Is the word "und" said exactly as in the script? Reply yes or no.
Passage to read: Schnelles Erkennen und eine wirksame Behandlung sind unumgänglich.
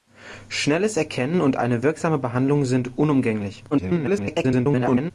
yes